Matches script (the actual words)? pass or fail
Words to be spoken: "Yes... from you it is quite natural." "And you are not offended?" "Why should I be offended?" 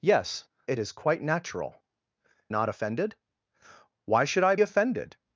fail